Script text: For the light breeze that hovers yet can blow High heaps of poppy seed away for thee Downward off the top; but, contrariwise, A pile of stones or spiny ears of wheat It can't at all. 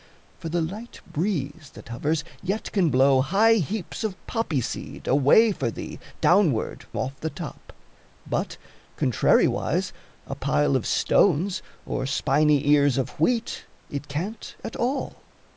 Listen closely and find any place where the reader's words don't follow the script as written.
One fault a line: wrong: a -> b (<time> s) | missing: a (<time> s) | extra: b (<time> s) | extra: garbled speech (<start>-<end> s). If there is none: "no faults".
no faults